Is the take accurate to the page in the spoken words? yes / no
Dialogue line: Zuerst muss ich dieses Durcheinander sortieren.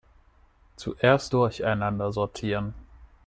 no